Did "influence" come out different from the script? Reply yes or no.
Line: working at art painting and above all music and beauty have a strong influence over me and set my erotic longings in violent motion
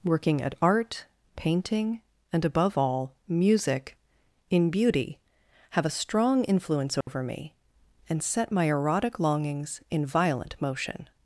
no